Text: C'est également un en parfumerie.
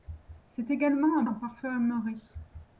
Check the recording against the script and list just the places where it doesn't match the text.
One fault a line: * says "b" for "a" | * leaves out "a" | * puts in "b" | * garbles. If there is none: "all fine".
all fine